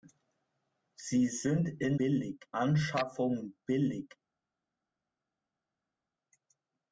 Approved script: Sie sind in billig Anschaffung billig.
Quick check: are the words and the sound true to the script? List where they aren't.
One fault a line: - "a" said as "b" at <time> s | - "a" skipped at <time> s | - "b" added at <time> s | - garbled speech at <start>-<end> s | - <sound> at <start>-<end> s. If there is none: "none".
none